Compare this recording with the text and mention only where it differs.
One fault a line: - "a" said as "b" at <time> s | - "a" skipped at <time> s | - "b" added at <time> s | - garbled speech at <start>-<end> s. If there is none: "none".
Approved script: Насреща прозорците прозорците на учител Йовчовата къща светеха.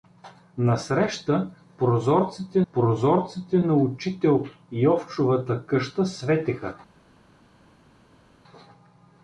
none